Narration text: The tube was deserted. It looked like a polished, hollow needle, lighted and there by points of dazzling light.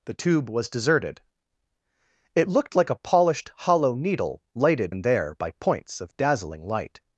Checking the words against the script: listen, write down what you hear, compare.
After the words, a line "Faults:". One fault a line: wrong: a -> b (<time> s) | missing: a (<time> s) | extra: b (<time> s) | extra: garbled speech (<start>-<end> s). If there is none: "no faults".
The tube was deserted. It looked like a polished, hollow needle, lighted and there by points of dazzling light.
Faults:
no faults